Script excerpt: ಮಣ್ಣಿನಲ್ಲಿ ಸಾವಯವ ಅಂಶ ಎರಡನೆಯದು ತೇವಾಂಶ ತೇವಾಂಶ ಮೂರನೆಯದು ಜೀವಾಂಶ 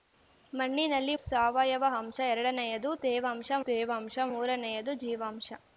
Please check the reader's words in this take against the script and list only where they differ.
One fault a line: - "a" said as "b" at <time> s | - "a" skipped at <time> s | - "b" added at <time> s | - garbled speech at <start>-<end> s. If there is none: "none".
none